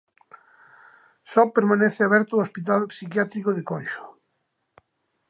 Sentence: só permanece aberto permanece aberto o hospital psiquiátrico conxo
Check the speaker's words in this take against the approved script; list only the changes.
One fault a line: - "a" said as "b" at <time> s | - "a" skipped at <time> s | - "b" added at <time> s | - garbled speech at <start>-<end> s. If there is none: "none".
- "permanece aberto" skipped at 2.3 s
- "de" added at 3.5 s